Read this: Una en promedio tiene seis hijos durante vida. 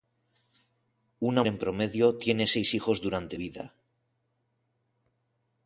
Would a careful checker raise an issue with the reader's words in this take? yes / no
no